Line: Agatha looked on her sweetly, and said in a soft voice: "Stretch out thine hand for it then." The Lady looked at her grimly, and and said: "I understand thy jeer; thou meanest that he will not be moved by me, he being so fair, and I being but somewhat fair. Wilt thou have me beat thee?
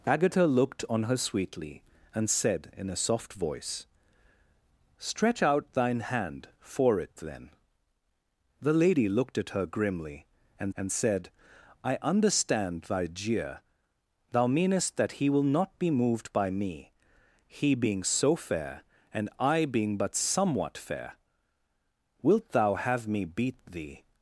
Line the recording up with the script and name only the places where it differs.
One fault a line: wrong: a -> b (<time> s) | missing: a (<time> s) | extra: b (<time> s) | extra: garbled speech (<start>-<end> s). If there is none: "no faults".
no faults